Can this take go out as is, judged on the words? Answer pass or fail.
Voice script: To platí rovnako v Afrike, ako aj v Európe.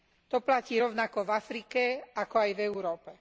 pass